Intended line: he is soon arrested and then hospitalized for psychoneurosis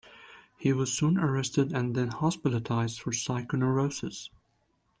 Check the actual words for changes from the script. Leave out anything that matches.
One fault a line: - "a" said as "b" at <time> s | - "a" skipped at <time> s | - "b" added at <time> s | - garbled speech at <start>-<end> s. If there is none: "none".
- "is" said as "was" at 0.7 s